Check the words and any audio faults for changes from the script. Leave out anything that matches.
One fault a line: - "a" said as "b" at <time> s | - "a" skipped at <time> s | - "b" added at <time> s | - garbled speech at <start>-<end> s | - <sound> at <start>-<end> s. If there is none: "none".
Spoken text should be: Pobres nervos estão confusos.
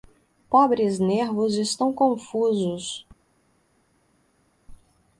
none